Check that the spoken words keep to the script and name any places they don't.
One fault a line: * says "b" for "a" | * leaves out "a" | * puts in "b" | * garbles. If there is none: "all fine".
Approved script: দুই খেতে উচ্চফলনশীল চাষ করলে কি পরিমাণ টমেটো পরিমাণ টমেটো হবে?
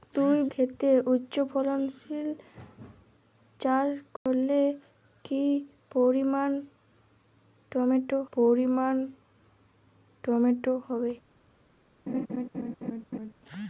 all fine